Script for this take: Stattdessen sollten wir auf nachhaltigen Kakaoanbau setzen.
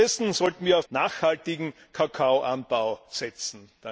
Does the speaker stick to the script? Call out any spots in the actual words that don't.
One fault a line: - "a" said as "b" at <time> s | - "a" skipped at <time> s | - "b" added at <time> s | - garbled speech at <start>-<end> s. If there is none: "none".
none